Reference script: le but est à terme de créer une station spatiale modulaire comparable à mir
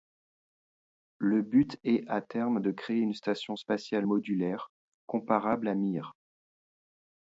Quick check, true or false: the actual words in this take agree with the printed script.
true